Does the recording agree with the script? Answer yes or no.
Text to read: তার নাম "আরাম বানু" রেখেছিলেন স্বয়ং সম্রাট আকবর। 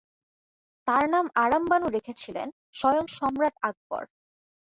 yes